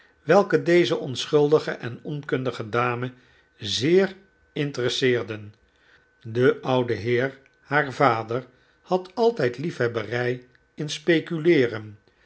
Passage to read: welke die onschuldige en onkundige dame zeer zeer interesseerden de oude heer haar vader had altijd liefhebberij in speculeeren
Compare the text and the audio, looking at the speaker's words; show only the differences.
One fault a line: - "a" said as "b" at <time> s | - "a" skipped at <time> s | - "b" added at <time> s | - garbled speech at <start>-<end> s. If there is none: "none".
- "die" said as "deze" at 0.6 s
- "zeer" skipped at 4.2 s